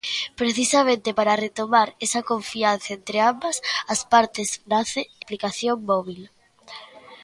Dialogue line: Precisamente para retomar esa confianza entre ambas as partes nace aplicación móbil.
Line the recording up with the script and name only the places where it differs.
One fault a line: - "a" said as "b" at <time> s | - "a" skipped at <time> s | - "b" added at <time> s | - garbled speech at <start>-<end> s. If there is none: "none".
none